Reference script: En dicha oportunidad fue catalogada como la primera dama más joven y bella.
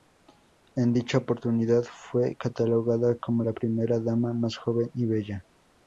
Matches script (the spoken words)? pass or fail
pass